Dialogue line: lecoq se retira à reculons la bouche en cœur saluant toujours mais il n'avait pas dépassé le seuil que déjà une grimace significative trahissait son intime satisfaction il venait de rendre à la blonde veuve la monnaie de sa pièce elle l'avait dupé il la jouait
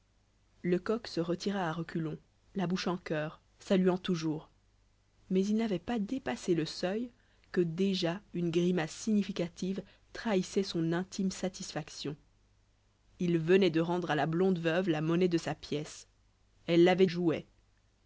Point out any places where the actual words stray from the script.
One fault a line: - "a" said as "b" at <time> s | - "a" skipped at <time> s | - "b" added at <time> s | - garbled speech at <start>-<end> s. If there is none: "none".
- "dupé il la" skipped at 17.1 s